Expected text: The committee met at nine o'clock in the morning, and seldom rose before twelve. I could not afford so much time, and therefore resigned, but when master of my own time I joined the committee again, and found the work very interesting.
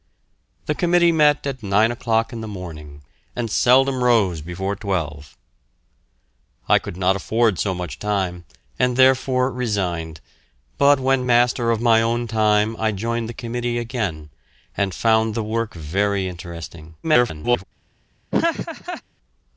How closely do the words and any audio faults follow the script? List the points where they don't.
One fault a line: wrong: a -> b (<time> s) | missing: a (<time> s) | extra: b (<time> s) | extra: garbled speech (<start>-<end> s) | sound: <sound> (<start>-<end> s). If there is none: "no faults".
extra: garbled speech (17.0-17.6 s)
sound: laugh (18.3-19.0 s)